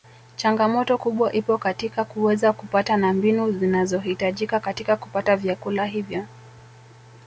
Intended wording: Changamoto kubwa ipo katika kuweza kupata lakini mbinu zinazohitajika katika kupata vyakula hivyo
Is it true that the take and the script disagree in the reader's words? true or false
true